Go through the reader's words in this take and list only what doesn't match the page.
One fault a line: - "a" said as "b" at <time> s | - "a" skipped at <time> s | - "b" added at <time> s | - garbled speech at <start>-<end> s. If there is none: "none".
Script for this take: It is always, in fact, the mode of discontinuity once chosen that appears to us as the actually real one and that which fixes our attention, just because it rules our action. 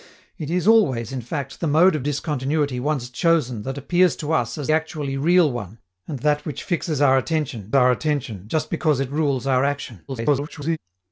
- "the" skipped at 4.7 s
- "our attention" added at 7.8 s
- garbled speech at 10.1-10.8 s